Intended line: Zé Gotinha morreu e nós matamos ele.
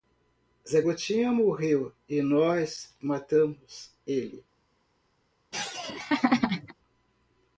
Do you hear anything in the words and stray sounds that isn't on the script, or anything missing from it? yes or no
yes